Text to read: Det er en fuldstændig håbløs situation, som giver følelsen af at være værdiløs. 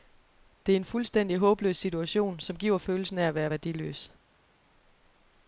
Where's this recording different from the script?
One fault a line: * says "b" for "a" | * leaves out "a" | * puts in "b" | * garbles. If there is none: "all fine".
all fine